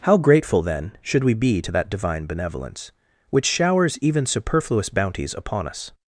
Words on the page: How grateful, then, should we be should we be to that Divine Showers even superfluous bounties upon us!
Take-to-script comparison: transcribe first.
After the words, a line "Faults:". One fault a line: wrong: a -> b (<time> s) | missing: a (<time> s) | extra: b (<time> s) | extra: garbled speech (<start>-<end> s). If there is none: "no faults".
How grateful, then, should we be to that Divine Benevolence, which showers even superfluous bounties upon us!
Faults:
missing: should we be (1.6 s)
extra: Benevolence which (2.2 s)